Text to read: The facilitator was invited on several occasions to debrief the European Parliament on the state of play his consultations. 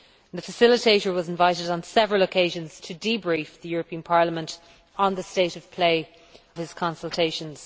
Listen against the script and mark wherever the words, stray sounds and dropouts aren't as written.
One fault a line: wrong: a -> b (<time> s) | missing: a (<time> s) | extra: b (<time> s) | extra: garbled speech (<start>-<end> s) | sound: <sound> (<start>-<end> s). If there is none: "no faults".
no faults